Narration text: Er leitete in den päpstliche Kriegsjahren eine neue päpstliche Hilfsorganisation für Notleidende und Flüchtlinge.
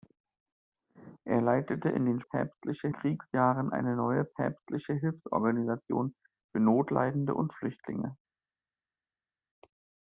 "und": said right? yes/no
yes